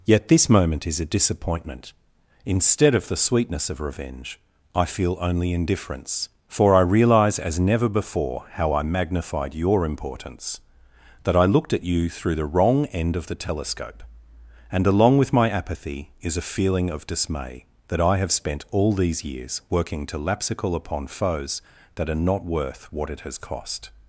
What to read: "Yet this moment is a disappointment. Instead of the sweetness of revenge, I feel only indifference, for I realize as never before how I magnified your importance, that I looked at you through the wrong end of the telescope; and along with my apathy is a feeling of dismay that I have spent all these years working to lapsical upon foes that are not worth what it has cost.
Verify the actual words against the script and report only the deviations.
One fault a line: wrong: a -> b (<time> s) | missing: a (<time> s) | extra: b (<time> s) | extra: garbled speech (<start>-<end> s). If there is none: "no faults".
no faults